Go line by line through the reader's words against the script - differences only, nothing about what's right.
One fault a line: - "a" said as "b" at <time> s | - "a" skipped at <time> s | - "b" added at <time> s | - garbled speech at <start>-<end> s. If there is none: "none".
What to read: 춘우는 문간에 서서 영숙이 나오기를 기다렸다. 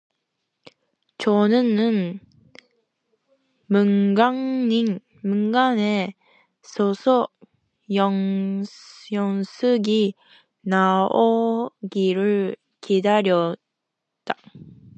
none